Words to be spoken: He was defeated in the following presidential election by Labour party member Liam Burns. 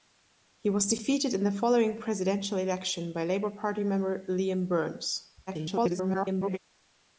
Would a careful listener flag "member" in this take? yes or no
no